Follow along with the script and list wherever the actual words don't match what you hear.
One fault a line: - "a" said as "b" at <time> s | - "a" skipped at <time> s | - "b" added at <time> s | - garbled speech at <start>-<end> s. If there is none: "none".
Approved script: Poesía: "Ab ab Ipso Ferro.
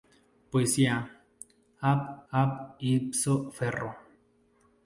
none